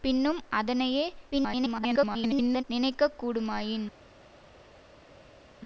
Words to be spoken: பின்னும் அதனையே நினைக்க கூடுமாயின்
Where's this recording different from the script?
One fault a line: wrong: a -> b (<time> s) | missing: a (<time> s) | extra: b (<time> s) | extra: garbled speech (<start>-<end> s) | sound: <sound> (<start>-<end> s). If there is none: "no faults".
extra: garbled speech (1.3-2.6 s)